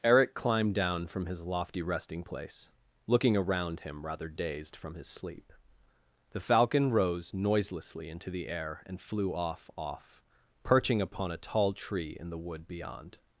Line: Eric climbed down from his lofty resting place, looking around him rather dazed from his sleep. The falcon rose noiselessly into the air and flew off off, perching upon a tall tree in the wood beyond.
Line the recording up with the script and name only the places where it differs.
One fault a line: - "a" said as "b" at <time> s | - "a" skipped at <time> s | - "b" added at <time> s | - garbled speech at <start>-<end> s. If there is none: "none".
none